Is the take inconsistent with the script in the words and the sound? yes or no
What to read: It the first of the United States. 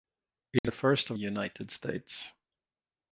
yes